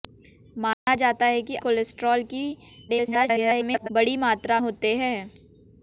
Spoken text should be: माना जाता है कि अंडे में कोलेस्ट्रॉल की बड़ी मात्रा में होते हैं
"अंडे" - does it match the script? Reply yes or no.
no